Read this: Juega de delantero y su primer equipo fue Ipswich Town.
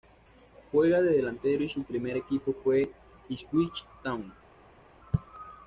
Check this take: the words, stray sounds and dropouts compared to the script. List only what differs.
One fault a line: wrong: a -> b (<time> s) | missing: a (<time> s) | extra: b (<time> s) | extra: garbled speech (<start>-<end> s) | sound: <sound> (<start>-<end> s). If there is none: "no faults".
no faults